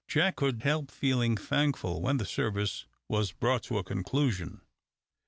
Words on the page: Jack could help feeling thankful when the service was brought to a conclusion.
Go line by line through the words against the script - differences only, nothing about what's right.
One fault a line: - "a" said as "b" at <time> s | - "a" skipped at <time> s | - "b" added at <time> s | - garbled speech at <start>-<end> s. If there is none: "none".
none